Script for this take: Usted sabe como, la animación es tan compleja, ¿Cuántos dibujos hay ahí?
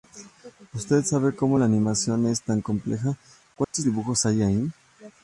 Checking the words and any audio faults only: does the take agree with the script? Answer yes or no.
no